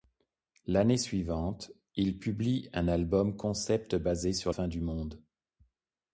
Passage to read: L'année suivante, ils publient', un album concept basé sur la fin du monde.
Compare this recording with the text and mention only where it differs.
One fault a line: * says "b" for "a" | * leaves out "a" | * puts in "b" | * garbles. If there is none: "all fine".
* leaves out "la"